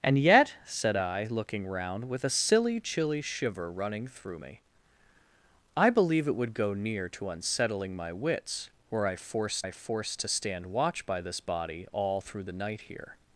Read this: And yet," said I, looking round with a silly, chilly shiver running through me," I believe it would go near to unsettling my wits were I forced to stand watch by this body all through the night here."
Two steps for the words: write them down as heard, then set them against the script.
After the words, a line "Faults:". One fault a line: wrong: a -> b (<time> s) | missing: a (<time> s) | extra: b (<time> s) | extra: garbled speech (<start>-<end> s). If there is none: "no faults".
And yet," said I, looking round with a silly, chilly shiver running through me," I believe it would go near to unsettling my wits were I forced I forced to stand watch by this body all through the night here."
Faults:
extra: I forced (9.6 s)